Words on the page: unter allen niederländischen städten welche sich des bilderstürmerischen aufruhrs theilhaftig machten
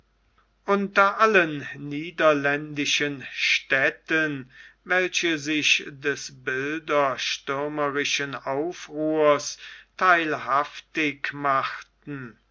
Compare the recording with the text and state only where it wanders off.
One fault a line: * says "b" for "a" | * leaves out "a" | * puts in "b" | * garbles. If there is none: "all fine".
all fine